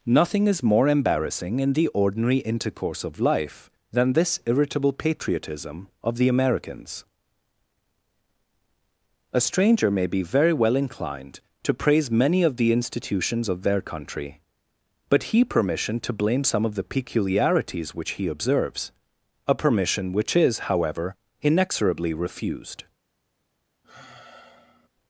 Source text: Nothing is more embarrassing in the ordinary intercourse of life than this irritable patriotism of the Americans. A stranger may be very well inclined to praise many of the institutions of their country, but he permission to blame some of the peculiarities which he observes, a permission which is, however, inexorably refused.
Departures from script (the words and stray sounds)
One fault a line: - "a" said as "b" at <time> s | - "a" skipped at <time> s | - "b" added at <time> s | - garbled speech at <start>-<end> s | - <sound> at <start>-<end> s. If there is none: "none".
- sigh at 23.8-24.9 s